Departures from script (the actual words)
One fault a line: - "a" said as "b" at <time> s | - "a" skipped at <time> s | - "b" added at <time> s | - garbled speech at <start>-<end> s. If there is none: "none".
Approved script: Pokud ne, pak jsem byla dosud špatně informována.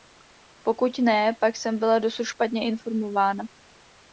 none